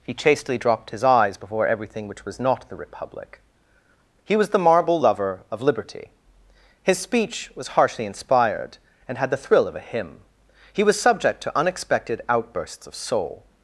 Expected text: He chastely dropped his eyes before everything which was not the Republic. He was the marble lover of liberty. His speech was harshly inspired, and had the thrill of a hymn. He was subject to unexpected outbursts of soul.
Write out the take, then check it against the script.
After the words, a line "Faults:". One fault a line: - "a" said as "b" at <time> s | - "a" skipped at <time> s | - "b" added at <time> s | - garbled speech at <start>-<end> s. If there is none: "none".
He chastely dropped his eyes before everything which was not the Republic. He was the marble lover of liberty. His speech was harshly inspired, and had the thrill of a hymn. He was subject to unexpected outbursts of soul.
Faults:
none